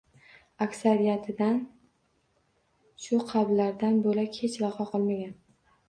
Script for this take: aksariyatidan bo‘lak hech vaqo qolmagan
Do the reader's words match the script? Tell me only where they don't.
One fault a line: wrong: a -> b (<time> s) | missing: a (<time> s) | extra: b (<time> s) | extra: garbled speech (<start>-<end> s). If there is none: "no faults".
extra: shu qabrlardan (3.0 s)